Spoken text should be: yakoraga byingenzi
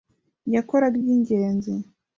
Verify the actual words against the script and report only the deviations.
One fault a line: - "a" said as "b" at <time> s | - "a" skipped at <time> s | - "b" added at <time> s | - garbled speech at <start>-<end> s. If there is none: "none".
none